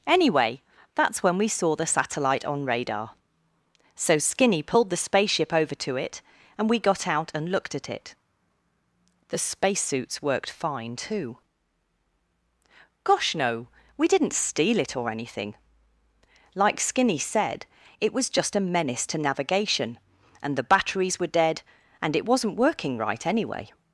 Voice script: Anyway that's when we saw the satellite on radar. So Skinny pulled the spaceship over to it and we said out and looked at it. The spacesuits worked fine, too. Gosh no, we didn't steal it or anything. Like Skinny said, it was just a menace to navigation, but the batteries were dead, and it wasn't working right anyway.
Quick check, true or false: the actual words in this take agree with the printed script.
false